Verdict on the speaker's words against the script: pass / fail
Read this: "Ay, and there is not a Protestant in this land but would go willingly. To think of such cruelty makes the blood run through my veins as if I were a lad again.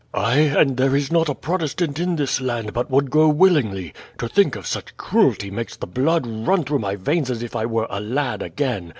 pass